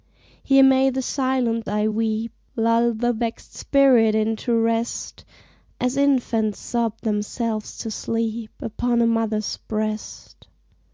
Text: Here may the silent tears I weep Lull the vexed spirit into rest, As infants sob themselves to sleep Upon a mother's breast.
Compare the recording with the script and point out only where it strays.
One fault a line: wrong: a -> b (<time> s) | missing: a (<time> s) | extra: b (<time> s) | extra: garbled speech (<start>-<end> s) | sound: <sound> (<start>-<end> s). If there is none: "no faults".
missing: tears (1.7 s)